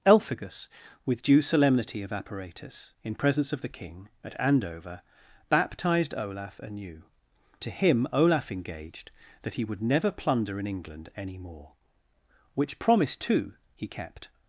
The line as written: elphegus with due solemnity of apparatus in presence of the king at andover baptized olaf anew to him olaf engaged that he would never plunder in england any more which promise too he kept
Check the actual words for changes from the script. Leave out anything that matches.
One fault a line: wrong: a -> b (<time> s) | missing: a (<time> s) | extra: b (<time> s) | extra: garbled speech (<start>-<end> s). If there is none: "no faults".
no faults